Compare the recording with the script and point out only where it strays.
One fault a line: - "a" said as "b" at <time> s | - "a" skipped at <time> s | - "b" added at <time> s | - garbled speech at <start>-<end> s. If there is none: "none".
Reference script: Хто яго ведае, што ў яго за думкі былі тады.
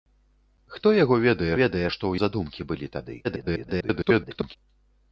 - "ведае" added at 1.6 s
- "яго" skipped at 2.1 s
- garbled speech at 3.2-4.6 s